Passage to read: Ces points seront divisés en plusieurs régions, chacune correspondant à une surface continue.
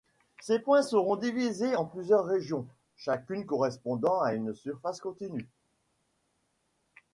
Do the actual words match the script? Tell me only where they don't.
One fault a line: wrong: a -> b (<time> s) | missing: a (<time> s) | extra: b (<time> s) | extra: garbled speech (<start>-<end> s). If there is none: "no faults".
no faults